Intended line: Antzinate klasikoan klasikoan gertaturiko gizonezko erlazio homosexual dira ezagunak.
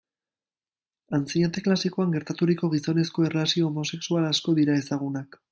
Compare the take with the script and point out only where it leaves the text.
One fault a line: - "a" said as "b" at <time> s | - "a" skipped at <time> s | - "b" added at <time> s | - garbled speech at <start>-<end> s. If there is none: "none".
- "klasikoan" skipped at 2.2 s
- "asko" added at 4.3 s